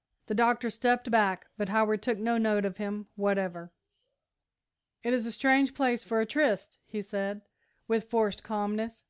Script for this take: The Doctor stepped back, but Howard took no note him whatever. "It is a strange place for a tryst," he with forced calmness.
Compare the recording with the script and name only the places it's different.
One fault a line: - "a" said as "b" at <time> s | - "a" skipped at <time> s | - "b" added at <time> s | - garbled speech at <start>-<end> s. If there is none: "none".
- "of" added at 2.6 s
- "said" added at 7.0 s